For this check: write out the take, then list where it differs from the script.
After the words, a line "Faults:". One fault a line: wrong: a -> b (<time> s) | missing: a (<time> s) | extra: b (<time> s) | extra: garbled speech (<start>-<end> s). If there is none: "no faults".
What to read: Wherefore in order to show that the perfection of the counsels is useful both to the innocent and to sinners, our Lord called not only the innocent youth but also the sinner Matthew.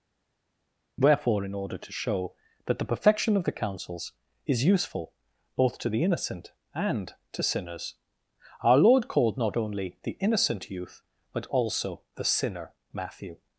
Wherefore in order to show that the perfection of the counsels is useful both to the innocent and to sinners, our Lord called not only the innocent youth but also the sinner Matthew.
Faults:
no faults